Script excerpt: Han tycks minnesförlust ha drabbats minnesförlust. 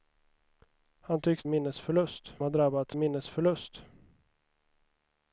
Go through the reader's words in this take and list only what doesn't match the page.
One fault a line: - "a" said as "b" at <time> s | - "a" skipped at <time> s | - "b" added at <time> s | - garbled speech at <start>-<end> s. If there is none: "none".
none